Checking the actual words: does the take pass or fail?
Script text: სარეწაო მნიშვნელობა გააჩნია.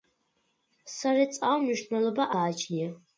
pass